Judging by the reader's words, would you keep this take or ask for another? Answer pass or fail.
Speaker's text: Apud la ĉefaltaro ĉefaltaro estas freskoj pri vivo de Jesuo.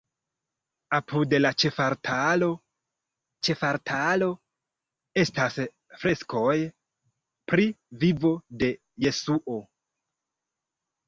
pass